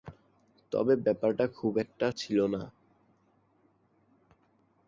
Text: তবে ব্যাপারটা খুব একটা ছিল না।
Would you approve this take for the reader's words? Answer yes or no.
yes